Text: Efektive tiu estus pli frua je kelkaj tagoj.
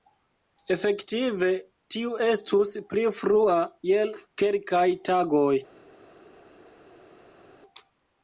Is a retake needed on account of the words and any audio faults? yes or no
no